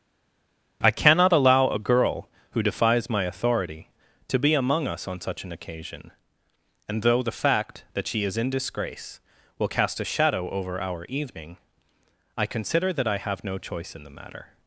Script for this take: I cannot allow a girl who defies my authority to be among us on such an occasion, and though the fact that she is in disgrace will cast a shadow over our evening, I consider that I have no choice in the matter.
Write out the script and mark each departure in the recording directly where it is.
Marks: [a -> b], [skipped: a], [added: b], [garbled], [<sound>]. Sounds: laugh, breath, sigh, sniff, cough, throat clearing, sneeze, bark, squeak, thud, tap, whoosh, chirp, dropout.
I cannot allow a girl who defies my authority to be among us on such an occasion, and though the fact that she is in disgrace will cast a shadow over our evening, I consider that I have no choice in the matter.